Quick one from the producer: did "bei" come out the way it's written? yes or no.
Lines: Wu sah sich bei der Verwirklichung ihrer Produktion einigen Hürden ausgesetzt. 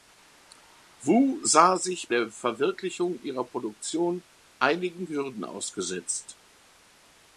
no